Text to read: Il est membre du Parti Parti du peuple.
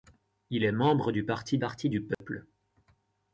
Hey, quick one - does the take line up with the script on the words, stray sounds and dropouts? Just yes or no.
no